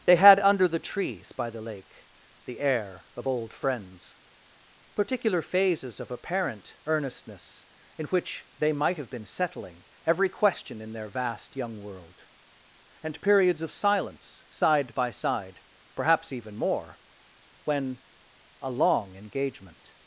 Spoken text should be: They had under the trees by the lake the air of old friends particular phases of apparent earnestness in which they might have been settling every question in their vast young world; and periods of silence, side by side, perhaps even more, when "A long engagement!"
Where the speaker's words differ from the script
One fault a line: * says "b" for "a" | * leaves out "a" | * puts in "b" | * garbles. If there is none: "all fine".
all fine